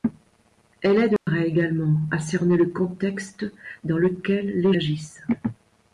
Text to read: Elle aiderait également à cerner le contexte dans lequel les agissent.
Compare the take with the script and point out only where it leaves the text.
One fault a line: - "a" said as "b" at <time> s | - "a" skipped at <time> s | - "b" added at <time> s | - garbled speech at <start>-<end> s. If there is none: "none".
none